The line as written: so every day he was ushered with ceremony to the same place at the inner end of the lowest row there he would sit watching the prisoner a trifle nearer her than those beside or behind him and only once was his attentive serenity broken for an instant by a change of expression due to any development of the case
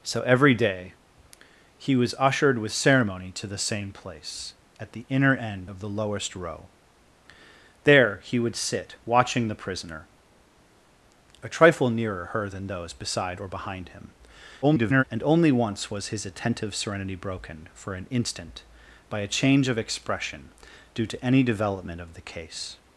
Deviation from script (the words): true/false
true